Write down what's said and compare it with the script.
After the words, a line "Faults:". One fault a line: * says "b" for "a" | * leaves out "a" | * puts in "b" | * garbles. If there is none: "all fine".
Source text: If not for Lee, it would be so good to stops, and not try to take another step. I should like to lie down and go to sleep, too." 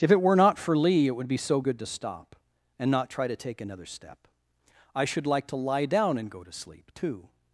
If it were not for Lee, it would be so good to stop, and not try to take another step. I should like to lie down and go to sleep, too."
Faults:
* puts in "it were"
* says "stop" for "stops"